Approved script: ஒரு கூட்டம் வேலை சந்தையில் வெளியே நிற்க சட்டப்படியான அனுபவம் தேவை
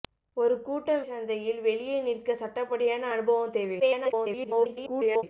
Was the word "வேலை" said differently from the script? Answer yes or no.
yes